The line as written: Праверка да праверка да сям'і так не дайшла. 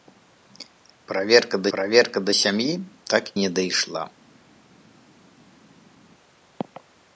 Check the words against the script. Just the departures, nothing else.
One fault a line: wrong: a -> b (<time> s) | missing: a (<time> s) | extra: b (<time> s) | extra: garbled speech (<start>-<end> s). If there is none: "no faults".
no faults